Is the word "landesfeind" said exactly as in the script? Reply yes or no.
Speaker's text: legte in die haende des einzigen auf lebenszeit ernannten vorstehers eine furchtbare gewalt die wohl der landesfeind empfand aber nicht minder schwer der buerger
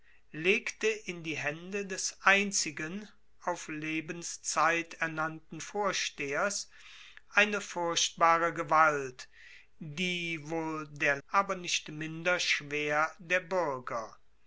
no